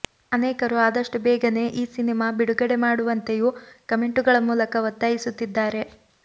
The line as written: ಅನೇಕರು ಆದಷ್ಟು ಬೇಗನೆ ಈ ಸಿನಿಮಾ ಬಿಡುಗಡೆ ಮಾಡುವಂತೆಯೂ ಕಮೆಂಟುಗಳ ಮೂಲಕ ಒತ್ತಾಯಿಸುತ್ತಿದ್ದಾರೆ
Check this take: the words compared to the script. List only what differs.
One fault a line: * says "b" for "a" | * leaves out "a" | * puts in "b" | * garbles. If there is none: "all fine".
all fine